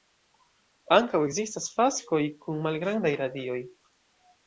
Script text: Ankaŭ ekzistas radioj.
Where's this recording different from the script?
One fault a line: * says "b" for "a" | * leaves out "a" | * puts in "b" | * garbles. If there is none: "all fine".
* puts in "faskoj kun malgrandaj"